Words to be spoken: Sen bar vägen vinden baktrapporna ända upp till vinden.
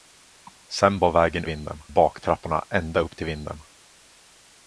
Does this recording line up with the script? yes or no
yes